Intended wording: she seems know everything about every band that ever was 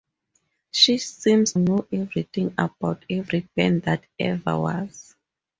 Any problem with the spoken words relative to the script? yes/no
no